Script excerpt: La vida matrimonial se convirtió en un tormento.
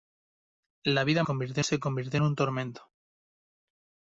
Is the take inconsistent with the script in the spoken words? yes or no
yes